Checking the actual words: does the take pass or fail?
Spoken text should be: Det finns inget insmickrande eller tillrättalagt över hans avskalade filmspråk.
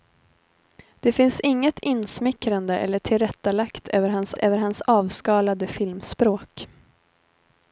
fail